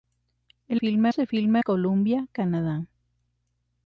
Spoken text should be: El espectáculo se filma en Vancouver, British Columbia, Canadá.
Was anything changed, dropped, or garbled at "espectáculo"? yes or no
yes